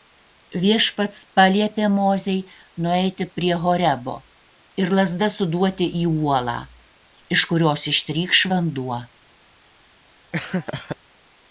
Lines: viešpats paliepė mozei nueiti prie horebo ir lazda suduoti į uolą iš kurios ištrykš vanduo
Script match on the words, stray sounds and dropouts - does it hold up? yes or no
no